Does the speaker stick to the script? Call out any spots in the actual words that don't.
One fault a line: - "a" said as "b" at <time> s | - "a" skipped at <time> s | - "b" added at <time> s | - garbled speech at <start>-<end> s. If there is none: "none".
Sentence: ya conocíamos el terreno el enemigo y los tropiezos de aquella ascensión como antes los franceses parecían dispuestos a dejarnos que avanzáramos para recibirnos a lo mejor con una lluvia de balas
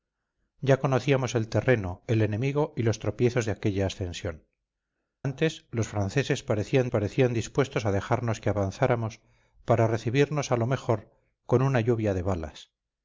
- "como" skipped at 4.5 s
- "parecían" added at 6.9 s